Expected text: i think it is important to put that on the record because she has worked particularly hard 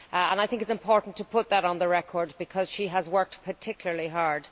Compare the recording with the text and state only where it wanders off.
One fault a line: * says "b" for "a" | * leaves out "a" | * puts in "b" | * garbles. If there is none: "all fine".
all fine